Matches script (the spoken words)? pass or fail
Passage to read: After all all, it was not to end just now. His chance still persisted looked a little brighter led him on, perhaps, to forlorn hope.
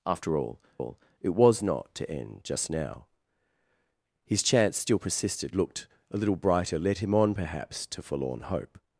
pass